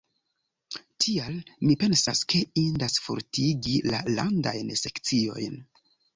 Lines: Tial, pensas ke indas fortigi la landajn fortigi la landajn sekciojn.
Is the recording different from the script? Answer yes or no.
yes